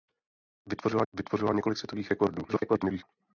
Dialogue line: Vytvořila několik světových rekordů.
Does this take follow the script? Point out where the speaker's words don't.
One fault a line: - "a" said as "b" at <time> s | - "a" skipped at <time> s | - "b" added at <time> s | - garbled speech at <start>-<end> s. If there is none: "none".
- "vytvořila" added at 1.1 s
- garbled speech at 2.5-3.0 s